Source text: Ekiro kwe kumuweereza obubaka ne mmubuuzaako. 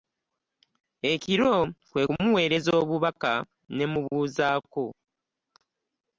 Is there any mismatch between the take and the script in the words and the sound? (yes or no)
no